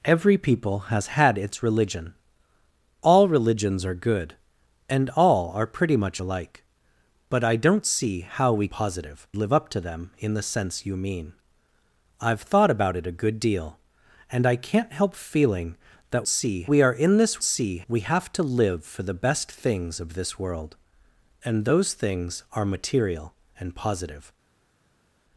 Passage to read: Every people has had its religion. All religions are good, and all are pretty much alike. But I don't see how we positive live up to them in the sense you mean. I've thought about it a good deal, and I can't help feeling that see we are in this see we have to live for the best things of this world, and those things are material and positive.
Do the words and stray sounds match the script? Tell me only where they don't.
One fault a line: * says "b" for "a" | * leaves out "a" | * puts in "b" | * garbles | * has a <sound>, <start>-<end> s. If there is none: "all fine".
all fine